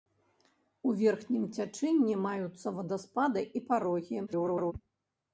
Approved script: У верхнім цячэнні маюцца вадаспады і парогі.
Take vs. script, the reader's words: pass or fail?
fail